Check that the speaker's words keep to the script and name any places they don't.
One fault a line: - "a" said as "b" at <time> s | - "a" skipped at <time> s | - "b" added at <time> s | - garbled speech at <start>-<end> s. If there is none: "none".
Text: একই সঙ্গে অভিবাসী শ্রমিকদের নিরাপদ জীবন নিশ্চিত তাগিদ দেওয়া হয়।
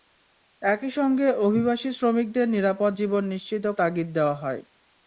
none